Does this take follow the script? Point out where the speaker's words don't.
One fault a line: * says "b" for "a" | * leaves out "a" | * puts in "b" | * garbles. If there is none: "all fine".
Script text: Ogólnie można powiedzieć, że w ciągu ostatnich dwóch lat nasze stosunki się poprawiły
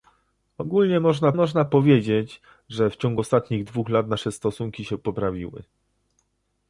* puts in "można"